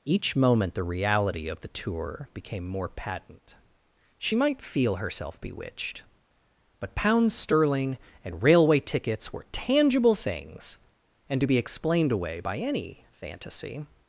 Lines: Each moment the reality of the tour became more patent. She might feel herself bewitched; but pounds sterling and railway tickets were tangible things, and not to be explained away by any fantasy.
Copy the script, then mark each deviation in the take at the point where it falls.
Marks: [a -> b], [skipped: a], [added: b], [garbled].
Each moment the reality of the tour became more patent. She might feel herself bewitched; but pounds sterling and railway tickets were tangible things, and [skipped: not] to be explained away by any fantasy.